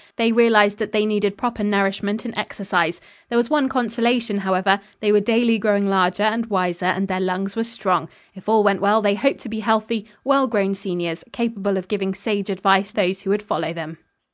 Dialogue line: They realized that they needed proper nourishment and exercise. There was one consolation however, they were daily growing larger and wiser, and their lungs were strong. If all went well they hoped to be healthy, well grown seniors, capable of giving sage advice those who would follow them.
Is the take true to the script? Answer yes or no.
yes